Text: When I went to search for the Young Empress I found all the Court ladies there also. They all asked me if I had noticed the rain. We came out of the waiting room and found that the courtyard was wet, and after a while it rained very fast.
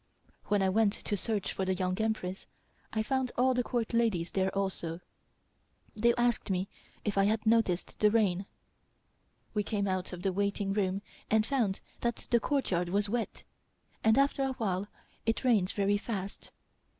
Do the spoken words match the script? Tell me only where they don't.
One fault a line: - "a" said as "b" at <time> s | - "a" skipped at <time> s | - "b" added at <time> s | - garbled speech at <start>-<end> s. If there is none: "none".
- "all" skipped at 6.1 s